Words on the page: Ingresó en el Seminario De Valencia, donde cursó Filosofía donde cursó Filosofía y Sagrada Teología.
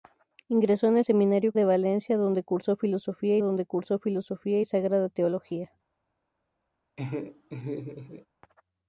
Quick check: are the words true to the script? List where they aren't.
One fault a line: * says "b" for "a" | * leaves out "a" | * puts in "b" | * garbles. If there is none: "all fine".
all fine